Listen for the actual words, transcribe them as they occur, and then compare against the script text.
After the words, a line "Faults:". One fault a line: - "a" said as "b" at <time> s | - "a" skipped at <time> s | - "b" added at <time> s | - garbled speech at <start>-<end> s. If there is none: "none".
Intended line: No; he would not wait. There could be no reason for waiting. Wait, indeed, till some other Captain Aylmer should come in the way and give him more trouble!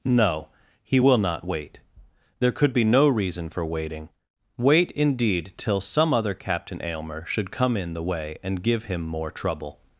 No; he will not wait. There could be no reason for waiting. Wait, indeed, till some other Captain Aylmer should come in the way and give him more trouble!
Faults:
- "would" said as "will" at 1.0 s